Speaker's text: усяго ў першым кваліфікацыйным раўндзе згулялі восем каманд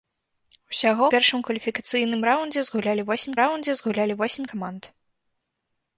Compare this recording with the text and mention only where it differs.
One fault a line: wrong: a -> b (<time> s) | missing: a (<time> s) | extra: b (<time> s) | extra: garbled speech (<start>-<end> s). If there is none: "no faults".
missing: ў (1.1 s)
extra: раўндзе згулялі восем (3.4 s)